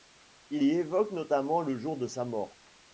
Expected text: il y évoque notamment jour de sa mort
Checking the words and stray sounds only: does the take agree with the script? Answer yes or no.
no